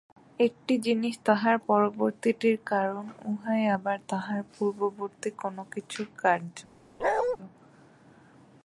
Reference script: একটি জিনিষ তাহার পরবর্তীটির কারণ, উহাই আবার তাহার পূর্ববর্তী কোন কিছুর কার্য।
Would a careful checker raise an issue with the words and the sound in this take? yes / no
yes